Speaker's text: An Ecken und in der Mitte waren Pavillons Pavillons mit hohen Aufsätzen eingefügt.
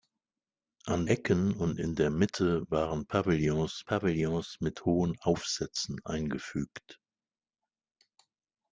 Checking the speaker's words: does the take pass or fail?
pass